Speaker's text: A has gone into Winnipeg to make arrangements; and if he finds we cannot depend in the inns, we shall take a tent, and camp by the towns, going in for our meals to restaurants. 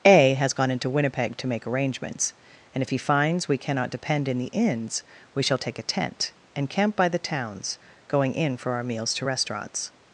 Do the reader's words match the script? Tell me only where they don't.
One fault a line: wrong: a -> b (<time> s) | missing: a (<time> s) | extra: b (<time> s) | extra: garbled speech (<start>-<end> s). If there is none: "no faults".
no faults